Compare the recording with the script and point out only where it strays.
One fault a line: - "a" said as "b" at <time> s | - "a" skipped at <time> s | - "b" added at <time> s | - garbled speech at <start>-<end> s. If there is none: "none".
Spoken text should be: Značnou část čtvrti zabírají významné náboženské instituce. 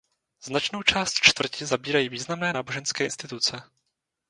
none